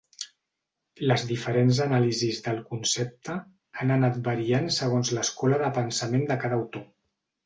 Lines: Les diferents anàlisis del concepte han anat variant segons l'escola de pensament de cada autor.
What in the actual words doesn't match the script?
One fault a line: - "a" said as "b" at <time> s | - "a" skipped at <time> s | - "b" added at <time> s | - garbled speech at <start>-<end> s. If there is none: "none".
none